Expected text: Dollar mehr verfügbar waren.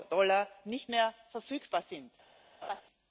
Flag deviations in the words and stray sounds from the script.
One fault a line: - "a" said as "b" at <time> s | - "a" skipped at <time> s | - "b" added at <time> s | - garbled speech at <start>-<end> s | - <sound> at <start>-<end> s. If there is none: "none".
- "nicht" added at 0.7 s
- "waren" said as "sind" at 1.8 s
- laugh at 2.6-2.8 s